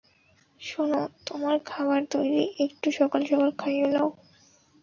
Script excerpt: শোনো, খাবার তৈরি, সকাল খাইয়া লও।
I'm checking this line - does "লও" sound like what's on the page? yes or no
yes